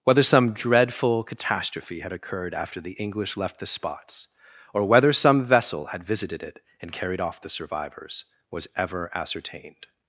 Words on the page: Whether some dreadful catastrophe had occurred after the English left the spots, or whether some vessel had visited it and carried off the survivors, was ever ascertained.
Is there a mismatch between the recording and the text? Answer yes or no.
no